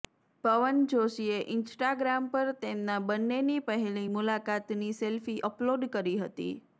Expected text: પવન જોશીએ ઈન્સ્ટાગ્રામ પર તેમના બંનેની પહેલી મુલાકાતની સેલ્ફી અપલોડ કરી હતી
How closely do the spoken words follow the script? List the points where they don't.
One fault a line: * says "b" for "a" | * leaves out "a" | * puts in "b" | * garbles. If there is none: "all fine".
all fine